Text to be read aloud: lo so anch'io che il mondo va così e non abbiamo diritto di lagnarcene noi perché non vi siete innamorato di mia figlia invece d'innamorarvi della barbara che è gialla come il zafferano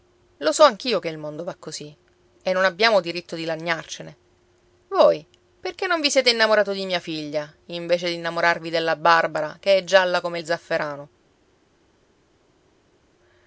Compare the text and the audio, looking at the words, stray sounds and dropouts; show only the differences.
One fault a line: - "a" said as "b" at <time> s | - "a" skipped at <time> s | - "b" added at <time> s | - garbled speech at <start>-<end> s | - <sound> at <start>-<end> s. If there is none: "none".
- "noi" said as "voi" at 4.9 s